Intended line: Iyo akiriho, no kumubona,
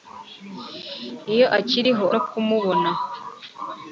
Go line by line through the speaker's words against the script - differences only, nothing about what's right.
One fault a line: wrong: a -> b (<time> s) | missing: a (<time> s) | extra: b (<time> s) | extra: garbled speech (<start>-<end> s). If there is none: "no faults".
no faults